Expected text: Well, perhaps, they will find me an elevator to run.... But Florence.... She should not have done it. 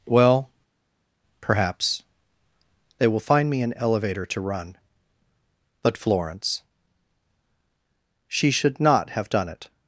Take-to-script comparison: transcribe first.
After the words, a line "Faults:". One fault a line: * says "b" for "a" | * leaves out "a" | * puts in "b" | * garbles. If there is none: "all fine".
Well, perhaps, they will find me an elevator to run.... But Florence.... She should not have done it.
Faults:
all fine